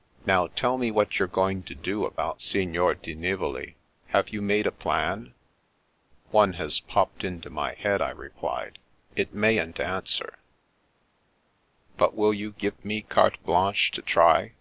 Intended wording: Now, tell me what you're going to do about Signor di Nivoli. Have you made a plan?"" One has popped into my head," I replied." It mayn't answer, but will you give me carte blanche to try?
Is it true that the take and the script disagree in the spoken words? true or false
false